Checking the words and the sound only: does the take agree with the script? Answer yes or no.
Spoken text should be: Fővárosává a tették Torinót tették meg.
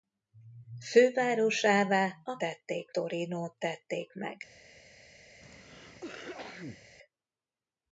no